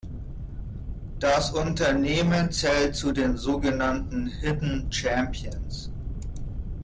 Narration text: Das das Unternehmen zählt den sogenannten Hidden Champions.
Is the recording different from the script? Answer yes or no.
yes